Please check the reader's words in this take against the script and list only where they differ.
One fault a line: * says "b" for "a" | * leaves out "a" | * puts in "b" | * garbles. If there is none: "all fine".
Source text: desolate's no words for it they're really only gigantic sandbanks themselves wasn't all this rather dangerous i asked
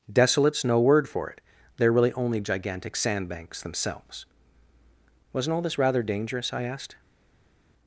* says "word" for "words"